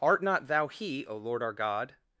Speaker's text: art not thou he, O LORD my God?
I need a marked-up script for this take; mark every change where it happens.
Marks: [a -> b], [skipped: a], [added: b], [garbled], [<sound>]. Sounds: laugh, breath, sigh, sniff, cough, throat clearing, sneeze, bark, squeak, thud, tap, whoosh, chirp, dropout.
art not thou he, O LORD [my -> our] God?